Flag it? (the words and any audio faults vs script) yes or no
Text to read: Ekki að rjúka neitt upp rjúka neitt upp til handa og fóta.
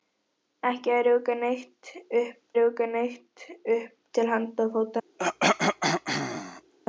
yes